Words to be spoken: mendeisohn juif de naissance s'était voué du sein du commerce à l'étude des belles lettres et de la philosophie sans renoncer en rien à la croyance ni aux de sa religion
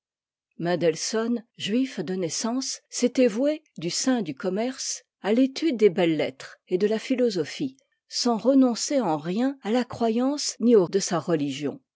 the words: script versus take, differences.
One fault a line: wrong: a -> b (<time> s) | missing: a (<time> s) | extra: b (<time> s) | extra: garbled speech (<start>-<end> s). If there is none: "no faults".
no faults